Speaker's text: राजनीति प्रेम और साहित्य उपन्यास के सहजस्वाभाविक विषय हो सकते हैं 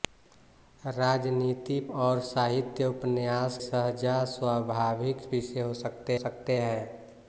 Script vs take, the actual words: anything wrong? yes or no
yes